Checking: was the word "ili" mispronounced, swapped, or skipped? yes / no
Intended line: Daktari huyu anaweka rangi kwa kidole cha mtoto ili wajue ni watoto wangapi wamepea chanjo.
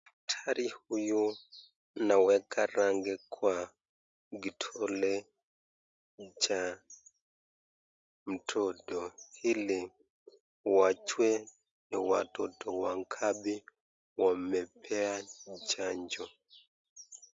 no